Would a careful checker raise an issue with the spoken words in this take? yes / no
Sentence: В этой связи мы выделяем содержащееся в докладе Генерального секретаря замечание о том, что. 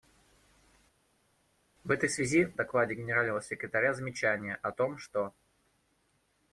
yes